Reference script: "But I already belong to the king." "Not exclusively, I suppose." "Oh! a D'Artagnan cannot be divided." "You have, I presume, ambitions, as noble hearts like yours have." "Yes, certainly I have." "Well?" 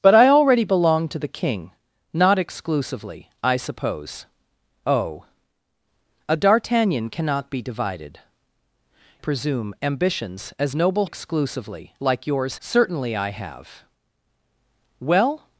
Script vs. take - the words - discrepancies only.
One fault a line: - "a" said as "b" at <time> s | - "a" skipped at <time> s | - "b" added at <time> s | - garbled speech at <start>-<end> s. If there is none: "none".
- "You have I" skipped at 8.2 s
- "hearts" said as "exclusively" at 11.0 s
- "have Yes" skipped at 12.6 s